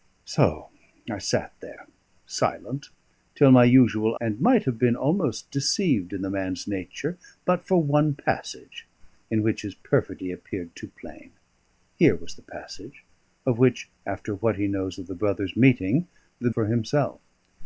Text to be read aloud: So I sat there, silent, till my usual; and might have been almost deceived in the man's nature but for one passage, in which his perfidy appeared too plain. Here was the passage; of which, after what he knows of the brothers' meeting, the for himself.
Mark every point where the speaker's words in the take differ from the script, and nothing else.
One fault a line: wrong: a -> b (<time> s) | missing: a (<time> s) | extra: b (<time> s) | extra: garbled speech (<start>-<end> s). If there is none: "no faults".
no faults